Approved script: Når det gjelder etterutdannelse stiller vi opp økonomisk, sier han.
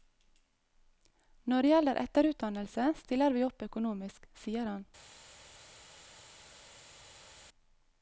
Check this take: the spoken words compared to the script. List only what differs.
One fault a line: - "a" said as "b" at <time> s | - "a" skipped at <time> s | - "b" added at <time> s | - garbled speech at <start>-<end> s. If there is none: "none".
none